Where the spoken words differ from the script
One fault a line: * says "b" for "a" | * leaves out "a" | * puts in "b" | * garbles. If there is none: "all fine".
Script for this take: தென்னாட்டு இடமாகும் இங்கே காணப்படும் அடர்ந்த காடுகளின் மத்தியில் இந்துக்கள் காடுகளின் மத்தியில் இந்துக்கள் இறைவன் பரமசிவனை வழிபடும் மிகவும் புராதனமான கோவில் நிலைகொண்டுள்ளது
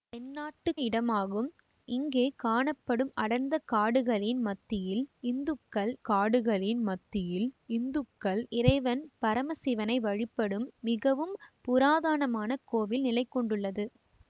all fine